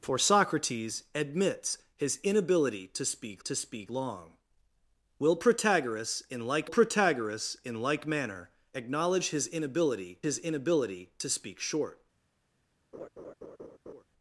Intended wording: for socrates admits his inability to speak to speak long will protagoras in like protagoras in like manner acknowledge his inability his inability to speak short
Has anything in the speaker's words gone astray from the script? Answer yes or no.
no